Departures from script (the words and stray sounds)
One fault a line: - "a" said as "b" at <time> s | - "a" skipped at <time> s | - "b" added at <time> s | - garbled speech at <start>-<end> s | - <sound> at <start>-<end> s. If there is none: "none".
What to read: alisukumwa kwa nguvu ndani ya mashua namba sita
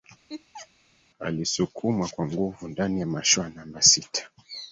- laugh at 0.3-0.7 s